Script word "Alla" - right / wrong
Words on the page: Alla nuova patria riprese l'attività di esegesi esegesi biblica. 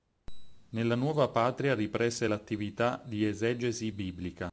wrong